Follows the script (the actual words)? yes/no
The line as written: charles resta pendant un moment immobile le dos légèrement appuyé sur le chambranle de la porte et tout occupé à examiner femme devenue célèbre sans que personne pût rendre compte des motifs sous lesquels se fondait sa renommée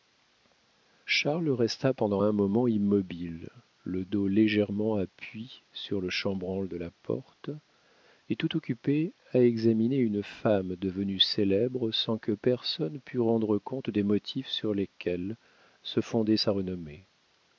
no